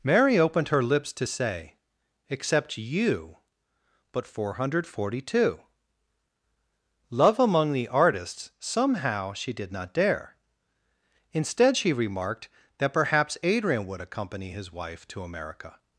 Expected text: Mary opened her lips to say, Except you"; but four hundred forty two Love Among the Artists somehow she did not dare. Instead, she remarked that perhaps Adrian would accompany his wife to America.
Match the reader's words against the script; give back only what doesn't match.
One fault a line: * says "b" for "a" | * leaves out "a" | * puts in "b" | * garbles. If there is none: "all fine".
all fine